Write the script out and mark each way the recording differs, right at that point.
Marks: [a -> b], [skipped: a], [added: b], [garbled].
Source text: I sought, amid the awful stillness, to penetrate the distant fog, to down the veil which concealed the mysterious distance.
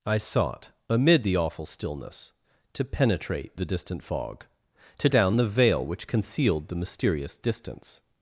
I sought, amid the awful stillness, to penetrate the distant fog, to down the veil which concealed the mysterious distance.